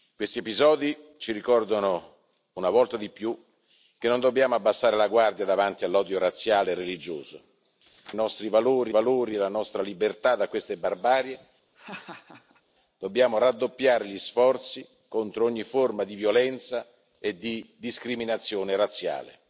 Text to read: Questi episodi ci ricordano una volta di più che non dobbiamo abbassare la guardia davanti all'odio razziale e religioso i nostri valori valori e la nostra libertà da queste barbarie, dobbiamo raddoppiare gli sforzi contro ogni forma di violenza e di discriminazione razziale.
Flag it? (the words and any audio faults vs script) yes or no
yes